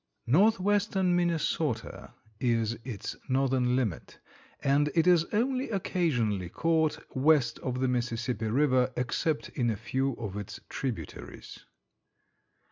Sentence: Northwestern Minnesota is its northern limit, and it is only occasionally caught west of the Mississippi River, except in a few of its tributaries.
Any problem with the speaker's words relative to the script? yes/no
no